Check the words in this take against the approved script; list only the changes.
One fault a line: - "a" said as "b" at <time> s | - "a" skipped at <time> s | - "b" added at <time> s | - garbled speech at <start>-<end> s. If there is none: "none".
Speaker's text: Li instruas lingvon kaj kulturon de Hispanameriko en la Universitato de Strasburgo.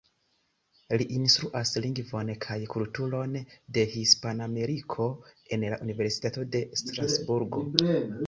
none